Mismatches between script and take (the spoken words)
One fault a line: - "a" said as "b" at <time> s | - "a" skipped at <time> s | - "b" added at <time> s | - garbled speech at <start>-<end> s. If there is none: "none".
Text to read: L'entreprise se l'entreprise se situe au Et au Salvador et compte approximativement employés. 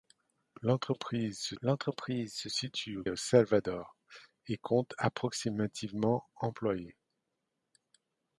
none